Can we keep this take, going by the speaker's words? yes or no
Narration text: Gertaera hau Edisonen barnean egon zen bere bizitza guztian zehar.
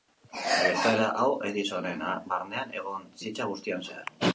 no